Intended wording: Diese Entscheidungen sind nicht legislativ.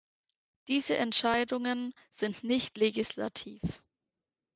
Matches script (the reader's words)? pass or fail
pass